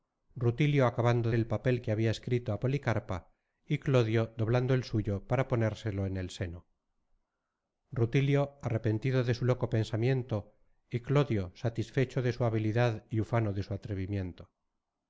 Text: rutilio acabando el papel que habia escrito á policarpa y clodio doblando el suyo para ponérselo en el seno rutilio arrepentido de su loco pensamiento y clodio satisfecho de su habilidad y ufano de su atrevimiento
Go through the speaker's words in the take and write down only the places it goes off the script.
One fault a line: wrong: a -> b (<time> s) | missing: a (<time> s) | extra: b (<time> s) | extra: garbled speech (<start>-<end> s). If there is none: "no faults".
no faults